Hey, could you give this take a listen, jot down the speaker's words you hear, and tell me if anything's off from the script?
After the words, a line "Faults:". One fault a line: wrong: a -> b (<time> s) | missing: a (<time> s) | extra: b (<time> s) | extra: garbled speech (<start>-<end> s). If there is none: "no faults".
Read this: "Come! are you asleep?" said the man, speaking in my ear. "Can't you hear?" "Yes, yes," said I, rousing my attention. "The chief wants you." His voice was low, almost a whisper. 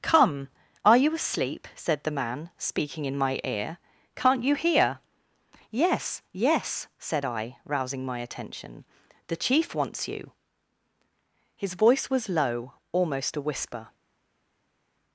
"Come! are you asleep?" said the man, speaking in my ear. "Can't you hear?" "Yes, yes," said I, rousing my attention. "The chief wants you." His voice was low, almost a whisper.
Faults:
no faults